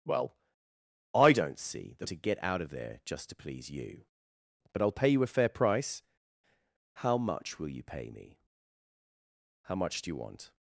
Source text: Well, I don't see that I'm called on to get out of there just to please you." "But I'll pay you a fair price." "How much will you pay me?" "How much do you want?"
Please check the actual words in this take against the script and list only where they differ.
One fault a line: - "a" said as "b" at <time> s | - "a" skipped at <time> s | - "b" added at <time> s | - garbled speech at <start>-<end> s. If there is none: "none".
- "I'm called on" skipped at 2.1 s